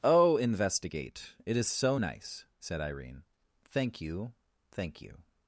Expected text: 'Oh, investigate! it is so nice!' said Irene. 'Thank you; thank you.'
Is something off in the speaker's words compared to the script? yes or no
no